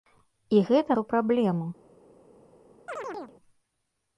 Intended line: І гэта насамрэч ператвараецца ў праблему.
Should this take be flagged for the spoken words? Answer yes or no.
yes